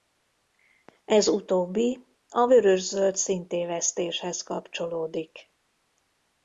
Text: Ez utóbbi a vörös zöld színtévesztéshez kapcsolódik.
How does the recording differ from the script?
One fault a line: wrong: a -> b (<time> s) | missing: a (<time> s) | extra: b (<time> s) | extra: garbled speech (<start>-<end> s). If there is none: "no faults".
no faults